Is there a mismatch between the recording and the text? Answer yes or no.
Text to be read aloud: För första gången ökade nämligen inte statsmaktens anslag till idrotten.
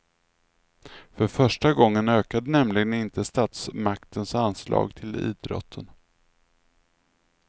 no